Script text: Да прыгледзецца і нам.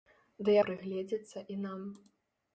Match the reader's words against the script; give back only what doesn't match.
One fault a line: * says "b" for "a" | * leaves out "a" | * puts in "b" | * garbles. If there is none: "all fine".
all fine